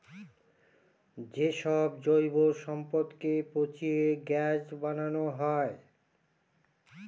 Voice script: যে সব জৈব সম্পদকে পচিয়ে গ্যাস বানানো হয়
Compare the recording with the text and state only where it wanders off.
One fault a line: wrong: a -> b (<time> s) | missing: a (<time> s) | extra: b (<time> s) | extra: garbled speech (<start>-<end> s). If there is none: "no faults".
no faults